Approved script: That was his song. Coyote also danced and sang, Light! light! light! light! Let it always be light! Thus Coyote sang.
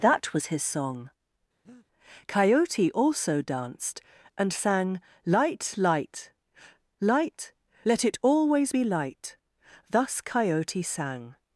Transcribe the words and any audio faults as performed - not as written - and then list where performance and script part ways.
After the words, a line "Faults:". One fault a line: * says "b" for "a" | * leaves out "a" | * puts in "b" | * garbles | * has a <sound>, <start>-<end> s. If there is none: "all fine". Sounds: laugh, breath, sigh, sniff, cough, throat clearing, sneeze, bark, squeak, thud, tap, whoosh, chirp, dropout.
That was his song. Coyote also danced and sang, Light! light! light! Let it always be light! Thus Coyote sang.
Faults:
* has a breath, 1.6-1.9 s
* leaves out "light"